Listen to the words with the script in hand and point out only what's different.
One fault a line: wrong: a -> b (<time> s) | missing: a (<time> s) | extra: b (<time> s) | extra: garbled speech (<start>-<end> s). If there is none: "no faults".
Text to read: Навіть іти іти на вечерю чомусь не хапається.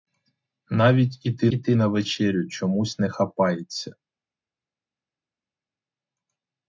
no faults